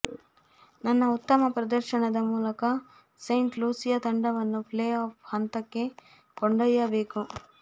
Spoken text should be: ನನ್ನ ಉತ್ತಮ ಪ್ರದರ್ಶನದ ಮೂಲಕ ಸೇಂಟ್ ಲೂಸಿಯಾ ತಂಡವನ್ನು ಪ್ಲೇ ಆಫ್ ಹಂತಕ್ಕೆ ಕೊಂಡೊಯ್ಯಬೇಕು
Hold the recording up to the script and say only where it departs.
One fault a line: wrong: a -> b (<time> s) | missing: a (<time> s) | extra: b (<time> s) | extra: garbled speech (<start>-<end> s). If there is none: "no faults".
no faults